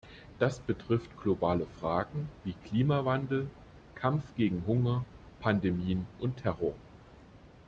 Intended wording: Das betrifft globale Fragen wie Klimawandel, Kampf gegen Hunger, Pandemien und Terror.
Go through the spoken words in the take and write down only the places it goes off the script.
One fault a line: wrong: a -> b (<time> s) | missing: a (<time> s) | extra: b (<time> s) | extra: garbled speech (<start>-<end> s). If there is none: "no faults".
no faults